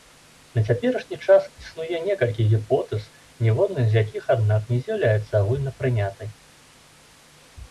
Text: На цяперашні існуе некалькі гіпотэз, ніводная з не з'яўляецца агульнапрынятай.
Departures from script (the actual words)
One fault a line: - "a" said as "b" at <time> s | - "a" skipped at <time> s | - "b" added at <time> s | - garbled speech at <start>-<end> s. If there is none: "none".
- "час" added at 1.2 s
- "якіх аднак" added at 4.0 s